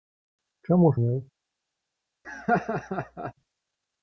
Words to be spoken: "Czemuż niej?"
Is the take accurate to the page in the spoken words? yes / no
yes